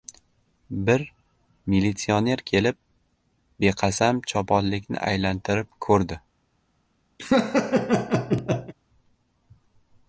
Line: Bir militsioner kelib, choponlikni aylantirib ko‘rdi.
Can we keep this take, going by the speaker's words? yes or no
no